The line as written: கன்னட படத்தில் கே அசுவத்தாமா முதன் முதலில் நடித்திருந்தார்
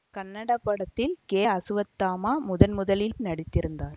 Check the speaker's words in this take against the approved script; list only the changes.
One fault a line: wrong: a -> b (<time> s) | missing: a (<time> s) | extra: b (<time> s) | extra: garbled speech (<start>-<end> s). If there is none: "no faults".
no faults